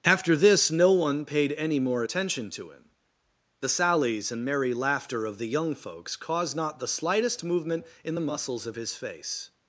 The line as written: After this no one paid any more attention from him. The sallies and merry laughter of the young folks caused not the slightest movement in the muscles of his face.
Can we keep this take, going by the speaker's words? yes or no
no